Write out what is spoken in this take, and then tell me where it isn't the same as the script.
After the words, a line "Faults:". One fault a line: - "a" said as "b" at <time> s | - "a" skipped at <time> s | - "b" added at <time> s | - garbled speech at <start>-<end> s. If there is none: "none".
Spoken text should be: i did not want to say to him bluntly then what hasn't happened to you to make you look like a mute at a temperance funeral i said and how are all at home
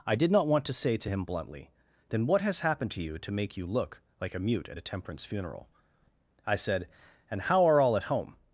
i did not want to say to him bluntly then what has happened to you to make you look like a mute at a temperance funeral i said and how are all at home
Faults:
- "hasn't" said as "has" at 2.4 s